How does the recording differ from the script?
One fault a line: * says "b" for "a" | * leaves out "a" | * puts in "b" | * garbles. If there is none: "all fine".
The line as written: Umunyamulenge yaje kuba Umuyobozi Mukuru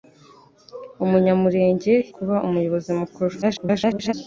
* leaves out "yaje"
* garbles